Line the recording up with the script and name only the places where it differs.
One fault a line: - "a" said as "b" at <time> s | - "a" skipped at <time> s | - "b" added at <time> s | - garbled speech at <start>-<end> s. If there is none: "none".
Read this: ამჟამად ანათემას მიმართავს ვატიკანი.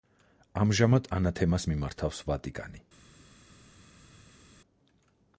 none